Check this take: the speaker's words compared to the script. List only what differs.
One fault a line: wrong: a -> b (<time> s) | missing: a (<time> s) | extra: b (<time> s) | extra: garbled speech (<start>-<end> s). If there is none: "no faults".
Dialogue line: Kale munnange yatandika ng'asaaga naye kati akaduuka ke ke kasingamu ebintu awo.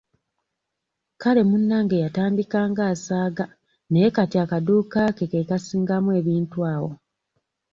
no faults